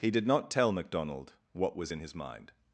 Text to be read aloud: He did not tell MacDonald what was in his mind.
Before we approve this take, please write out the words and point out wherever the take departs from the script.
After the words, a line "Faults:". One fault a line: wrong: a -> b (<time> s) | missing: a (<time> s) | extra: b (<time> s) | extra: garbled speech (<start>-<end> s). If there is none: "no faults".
He did not tell MacDonald what was in his mind.
Faults:
no faults